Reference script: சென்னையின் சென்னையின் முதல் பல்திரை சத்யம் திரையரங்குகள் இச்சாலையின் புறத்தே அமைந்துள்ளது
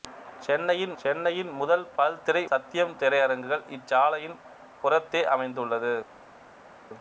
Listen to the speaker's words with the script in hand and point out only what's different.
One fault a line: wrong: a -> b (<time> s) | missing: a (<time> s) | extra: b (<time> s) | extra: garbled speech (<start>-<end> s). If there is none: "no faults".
no faults